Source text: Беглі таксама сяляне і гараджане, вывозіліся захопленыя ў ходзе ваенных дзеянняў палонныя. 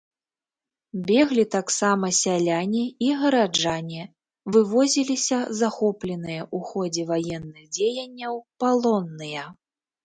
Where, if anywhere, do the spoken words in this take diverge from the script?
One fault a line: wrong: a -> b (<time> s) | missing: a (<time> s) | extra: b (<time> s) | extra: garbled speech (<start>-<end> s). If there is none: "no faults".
no faults